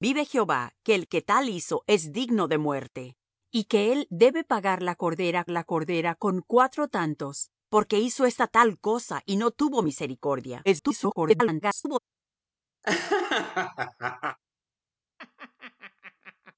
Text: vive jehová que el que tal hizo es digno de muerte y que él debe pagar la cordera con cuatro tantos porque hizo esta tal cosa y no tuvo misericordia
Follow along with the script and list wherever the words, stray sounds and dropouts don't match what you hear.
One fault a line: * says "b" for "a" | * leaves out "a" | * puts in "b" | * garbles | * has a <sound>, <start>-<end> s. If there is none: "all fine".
* puts in "la cordera"
* garbles
* has a laugh, 12.8-14.4 s
* has a laugh, 15.2-16.6 s